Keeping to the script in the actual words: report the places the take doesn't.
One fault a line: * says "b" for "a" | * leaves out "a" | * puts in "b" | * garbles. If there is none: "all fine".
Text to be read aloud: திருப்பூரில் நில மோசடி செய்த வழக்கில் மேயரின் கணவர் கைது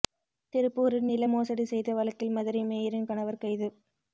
* puts in "மதுரை"